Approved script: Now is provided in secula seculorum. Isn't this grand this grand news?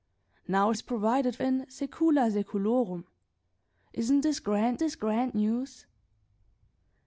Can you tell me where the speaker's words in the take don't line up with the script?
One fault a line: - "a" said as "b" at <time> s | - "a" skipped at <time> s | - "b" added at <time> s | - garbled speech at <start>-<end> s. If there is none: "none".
none